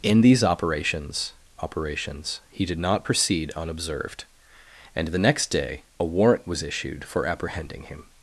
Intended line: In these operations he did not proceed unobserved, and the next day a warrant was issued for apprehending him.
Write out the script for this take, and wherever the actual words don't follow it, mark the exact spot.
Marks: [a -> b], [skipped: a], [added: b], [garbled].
In these operations [added: operations] he did not proceed unobserved, and the next day a warrant was issued for apprehending him.